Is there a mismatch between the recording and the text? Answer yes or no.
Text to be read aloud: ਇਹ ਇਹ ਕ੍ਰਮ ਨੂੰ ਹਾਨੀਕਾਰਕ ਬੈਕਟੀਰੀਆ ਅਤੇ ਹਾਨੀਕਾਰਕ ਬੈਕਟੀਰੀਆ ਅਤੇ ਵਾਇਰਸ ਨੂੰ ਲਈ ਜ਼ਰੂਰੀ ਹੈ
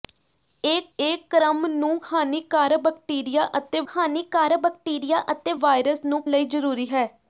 no